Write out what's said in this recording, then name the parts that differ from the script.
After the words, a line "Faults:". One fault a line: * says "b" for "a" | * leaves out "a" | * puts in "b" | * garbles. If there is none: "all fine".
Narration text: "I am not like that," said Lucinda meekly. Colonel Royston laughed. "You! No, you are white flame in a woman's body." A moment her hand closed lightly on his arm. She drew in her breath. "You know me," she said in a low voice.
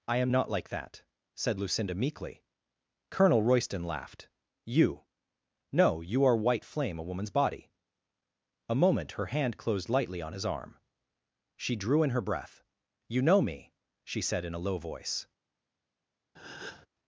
"I am not like that," said Lucinda meekly. Colonel Royston laughed. "You! No, you are white flame a woman's body." A moment her hand closed lightly on his arm. She drew in her breath. "You know me," she said in a low voice.
Faults:
* leaves out "in"